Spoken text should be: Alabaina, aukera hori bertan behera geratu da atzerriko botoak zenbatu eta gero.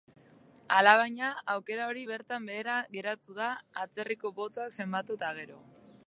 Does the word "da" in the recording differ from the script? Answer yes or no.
no